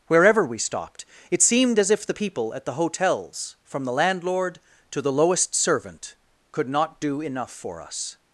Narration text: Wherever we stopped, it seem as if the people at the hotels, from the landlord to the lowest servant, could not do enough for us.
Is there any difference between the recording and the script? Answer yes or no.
yes